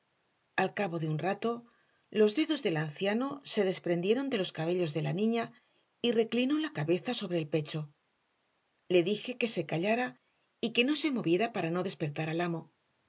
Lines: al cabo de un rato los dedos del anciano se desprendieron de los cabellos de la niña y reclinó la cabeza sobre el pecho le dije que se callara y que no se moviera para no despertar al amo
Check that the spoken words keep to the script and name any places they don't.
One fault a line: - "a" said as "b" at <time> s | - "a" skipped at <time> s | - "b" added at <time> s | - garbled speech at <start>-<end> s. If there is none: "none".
none